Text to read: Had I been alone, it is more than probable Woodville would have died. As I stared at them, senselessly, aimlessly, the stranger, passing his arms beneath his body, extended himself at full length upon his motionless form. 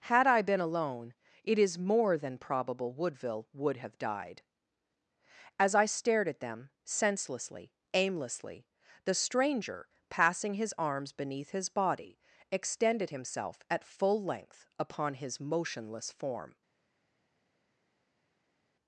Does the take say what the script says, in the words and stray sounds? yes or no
yes